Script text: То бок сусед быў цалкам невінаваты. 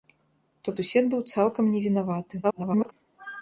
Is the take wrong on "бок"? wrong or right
wrong